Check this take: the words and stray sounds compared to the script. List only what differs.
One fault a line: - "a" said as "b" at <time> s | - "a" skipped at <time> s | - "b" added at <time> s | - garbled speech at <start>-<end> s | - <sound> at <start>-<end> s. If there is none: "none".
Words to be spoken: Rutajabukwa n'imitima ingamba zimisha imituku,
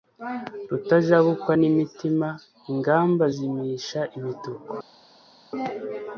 none